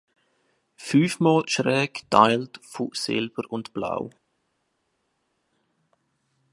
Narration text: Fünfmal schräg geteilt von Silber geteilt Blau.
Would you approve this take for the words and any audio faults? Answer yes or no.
no